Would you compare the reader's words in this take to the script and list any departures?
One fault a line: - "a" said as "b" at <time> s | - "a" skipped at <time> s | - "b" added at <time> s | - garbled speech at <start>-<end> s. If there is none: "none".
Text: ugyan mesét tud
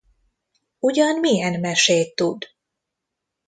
- "milyen" added at 1.2 s